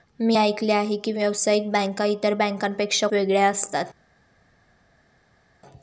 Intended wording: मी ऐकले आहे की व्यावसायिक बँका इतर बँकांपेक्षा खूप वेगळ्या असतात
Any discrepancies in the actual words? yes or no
yes